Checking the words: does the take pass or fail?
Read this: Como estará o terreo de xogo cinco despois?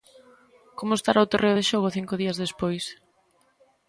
fail